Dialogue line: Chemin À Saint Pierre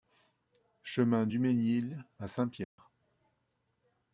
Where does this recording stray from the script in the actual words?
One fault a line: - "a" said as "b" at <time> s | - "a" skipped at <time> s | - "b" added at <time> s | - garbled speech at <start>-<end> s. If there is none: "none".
- "Dumesgnil" added at 1.3 s